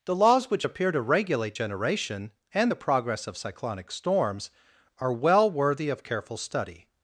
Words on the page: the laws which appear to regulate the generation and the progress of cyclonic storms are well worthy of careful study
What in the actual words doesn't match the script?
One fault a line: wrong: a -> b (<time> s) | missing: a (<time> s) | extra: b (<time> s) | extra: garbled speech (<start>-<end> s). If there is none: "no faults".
missing: the (1.6 s)